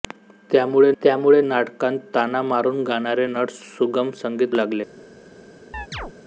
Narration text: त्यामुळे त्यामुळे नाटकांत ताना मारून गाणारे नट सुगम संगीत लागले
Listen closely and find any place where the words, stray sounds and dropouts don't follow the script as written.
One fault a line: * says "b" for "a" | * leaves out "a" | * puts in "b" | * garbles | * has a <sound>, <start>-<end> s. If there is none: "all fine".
* has a chirp, 5.7-6.1 s